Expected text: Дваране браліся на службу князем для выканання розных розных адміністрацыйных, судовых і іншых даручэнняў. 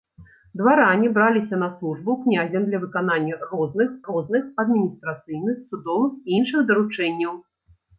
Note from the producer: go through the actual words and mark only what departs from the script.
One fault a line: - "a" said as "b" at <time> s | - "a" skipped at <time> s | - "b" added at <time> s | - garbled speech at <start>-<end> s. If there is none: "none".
none